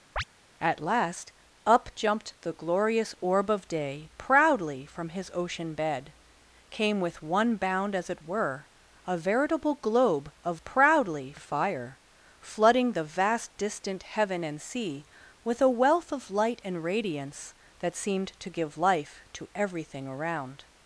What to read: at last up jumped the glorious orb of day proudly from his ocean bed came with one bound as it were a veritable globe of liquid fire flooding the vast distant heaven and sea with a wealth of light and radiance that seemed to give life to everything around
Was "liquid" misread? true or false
true